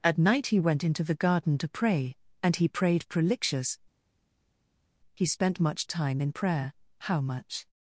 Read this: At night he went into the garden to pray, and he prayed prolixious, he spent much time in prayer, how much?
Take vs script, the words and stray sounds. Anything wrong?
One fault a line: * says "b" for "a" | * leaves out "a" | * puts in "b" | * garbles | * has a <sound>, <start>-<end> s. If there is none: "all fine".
all fine